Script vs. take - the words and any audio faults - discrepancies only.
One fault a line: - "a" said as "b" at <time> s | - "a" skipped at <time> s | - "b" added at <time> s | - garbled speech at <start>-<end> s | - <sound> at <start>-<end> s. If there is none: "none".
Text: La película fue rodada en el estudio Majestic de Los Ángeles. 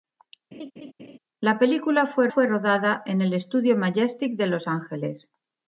- laugh at 0.5-1.2 s
- "fue" added at 2.3 s